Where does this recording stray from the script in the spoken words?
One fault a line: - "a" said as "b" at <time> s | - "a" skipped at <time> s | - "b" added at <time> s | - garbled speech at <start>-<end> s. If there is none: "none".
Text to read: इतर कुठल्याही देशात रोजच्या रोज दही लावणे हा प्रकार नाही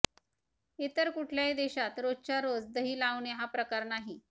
none